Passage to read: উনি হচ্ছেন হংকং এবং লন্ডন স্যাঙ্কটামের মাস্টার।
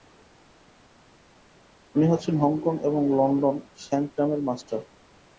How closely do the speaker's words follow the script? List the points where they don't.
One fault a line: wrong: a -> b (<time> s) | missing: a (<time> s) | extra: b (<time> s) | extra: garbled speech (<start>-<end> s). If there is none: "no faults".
no faults